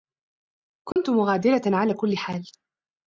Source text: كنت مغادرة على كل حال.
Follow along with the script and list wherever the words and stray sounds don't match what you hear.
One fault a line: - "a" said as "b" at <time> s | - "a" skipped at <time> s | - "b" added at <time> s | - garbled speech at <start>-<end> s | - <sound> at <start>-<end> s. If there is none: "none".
- dropout at 0.9-1.0 s